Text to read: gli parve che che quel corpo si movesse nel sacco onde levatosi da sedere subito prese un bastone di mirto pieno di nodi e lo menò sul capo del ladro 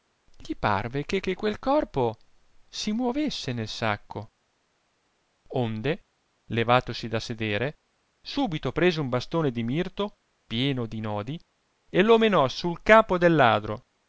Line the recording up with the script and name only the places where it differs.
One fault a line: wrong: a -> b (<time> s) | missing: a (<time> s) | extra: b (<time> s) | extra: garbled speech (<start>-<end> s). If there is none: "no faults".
no faults